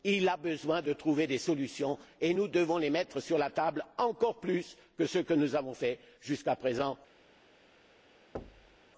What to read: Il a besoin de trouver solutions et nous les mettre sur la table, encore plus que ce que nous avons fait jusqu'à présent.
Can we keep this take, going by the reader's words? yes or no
no